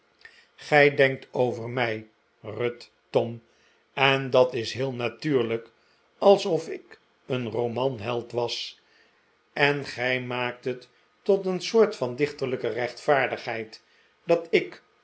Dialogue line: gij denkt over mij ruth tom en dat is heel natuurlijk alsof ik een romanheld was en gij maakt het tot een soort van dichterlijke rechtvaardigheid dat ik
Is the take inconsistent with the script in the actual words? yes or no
no